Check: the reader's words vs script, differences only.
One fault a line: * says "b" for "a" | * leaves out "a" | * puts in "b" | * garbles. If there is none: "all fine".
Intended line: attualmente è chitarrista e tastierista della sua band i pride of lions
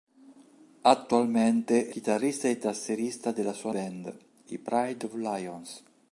all fine